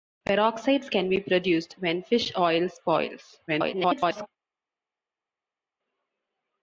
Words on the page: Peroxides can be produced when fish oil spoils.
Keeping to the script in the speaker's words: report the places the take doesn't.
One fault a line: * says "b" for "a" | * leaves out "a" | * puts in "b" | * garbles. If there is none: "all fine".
* garbles